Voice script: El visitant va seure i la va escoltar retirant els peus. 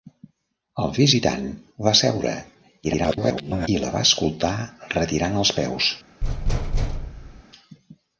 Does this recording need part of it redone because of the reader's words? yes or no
yes